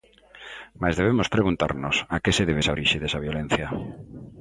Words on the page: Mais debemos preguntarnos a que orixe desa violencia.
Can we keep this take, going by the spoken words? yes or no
no